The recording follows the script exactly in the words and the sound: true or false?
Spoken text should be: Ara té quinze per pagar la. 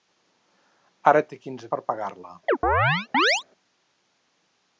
false